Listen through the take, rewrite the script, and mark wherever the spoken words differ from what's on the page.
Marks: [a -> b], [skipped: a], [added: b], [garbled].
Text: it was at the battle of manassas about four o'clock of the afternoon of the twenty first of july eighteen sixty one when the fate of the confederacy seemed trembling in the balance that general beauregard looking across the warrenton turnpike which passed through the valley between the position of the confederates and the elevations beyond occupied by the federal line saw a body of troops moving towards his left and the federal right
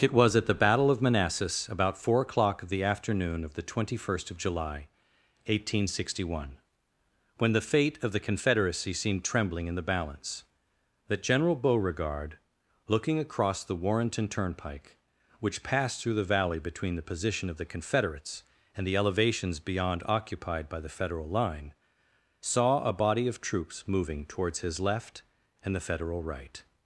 it was at the battle of manassas about four o'clock of the afternoon of the twenty first of july eighteen sixty one when the fate of the confederacy seemed trembling in the balance that general beauregard looking across the warrenton turnpike which passed through the valley between the position of the confederates and the elevations beyond occupied by the federal line saw a body of troops moving towards his left and the federal right